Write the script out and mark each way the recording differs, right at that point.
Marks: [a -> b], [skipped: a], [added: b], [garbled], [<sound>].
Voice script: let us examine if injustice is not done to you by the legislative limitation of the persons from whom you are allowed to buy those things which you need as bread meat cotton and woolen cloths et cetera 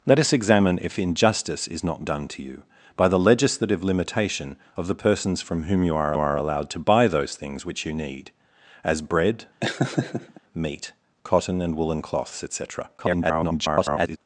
let us examine if injustice is not done to you by the legislative limitation of the persons from whom you are [added: are] allowed to buy those things which you need as bread [laugh] meat cotton and woolen cloths et cetera [garbled]